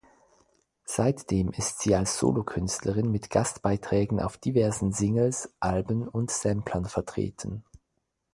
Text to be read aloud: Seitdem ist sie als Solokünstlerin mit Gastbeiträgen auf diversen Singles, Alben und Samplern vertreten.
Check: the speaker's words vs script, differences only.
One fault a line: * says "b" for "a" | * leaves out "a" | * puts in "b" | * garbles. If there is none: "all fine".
all fine